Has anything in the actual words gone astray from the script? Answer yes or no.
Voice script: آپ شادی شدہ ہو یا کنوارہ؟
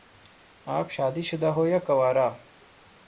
no